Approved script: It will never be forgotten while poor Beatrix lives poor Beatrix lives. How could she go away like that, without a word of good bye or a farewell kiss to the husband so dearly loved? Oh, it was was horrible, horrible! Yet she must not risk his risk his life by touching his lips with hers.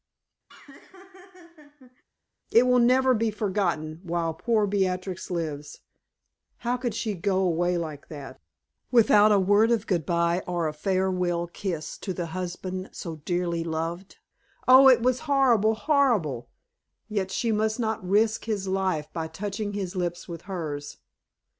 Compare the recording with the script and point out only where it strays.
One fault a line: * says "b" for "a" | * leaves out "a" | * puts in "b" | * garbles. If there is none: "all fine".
* leaves out "poor Beatrix lives"
* leaves out "was"
* leaves out "risk his"